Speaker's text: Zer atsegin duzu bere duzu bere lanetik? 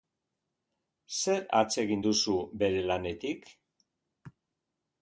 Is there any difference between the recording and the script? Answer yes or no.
yes